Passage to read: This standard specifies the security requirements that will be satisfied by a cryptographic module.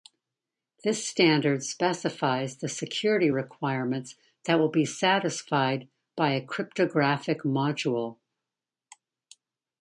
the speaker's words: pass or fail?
pass